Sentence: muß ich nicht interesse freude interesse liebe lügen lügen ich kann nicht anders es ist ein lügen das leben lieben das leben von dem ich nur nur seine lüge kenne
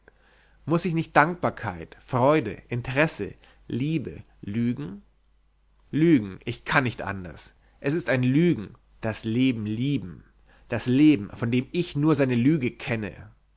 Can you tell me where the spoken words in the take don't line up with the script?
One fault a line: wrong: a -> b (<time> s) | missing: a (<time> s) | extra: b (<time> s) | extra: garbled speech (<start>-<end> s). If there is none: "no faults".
wrong: interesse -> dankbarkeit (1.1 s)
missing: nur (12.1 s)